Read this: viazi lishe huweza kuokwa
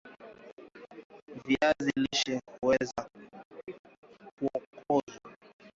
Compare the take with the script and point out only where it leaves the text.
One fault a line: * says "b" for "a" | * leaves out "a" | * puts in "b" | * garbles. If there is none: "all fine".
all fine